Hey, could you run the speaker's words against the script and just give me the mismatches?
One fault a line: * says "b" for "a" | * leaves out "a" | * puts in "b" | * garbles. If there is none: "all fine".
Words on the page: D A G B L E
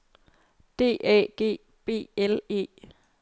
all fine